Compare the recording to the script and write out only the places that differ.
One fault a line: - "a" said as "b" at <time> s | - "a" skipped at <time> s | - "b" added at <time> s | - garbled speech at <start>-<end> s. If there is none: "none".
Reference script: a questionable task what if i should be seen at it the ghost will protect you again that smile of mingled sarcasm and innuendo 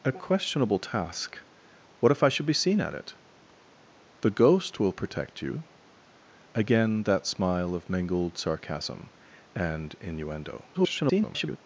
- garbled speech at 10.7-11.6 s